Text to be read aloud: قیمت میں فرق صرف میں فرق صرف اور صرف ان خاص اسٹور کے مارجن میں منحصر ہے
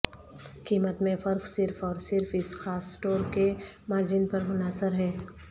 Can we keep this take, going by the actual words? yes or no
no